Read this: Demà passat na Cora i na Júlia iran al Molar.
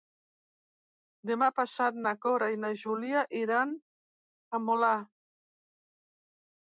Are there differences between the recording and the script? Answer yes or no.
no